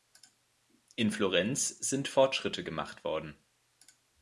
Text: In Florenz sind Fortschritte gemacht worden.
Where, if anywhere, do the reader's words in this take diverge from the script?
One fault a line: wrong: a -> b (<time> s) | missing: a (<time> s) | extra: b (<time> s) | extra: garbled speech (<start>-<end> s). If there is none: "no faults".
no faults